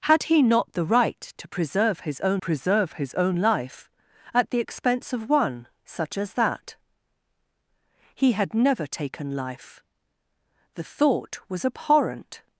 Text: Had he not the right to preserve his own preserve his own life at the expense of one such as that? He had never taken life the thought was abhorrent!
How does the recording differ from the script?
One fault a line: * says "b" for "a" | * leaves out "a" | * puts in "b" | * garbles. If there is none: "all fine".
all fine